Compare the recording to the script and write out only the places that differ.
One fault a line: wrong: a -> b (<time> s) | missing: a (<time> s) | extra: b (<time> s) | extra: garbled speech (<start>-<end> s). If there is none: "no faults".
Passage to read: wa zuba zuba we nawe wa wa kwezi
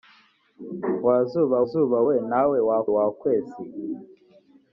no faults